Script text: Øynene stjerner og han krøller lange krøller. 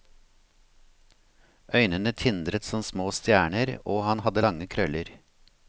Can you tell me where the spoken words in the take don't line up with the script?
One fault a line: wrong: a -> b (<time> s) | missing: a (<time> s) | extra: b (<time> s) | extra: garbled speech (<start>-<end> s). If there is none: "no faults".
extra: tindret som små (2.2 s)
wrong: krøller -> hadde (4.3 s)